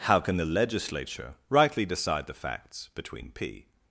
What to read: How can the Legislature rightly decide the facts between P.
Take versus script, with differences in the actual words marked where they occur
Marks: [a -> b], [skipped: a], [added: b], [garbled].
How can the Legislature rightly decide the facts between P.